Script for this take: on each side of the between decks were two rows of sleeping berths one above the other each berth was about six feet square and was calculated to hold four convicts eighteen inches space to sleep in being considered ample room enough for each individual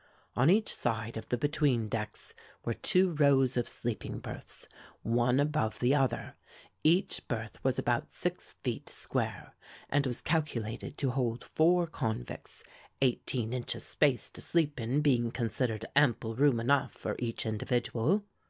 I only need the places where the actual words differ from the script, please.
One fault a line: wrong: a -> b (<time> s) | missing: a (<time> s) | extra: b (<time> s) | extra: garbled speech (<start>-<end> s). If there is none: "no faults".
no faults